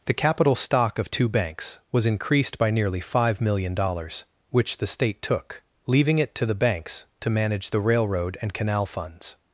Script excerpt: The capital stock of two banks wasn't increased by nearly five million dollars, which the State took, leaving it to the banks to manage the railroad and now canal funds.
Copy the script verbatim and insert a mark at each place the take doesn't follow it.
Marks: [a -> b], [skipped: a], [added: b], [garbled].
The capital stock of two banks [wasn't -> was] increased by nearly five million dollars, which the State took, leaving it to the banks to manage the railroad and [skipped: now] canal funds.